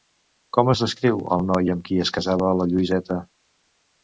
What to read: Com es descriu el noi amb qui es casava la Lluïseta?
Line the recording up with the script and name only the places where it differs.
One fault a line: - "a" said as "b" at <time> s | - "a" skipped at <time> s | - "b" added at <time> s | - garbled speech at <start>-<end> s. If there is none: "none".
none